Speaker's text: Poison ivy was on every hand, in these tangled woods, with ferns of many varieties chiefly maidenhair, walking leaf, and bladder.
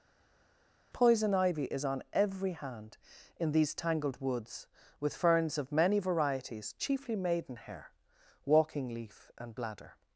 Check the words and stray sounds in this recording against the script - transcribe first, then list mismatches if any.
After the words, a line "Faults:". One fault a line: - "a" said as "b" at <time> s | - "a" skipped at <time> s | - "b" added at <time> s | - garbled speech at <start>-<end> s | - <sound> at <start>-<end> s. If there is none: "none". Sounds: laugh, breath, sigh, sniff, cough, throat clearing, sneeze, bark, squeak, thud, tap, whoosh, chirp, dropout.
Poison ivy is on every hand, in these tangled woods, with ferns of many varieties chiefly maidenhair, walking leaf, and bladder.
Faults:
- "was" said as "is" at 1.6 s